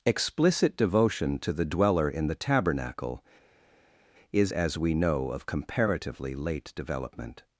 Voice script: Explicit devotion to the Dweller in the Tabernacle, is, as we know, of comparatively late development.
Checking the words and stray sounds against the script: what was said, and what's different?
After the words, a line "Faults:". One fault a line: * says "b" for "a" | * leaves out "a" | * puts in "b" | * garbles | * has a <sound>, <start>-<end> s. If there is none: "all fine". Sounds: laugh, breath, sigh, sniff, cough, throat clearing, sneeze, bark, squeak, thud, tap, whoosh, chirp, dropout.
Explicit devotion to the Dweller in the Tabernacle, is, as we know, of comparatively late development.
Faults:
all fine